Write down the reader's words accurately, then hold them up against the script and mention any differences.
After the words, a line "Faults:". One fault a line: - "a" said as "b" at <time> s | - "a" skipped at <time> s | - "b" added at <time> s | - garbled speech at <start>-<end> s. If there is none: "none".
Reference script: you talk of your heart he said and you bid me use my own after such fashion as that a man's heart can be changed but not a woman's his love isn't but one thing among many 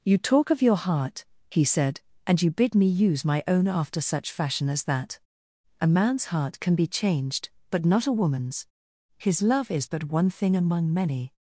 you talk of your heart he said and you bid me use my own after such fashion as that a man's heart can be changed but not a woman's his love is but one thing among many
Faults:
- "isn't" said as "is" at 9.7 s